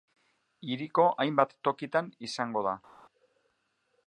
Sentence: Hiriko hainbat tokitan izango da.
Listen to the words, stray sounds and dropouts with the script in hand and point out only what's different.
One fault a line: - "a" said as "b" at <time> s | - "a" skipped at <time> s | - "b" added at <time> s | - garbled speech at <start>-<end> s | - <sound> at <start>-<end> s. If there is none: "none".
none